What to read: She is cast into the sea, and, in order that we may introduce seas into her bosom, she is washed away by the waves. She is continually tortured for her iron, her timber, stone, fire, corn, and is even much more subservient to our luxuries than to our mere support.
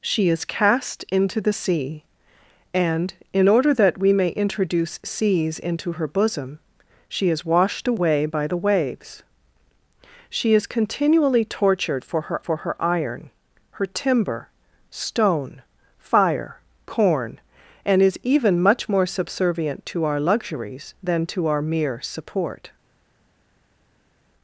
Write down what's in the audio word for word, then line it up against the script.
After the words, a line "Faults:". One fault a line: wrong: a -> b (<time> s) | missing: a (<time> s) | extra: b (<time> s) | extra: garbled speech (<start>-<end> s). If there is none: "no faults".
She is cast into the sea, and, in order that we may introduce seas into her bosom, she is washed away by the waves. She is continually tortured for her for her iron, her timber, stone, fire, corn, and is even much more subservient to our luxuries than to our mere support.
Faults:
extra: for her (12.4 s)